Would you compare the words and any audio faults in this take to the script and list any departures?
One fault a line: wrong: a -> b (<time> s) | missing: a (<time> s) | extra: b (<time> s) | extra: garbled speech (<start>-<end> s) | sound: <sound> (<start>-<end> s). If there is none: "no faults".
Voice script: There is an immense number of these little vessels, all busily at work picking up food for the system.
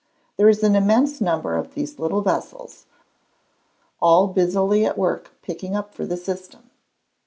missing: food (6.0 s)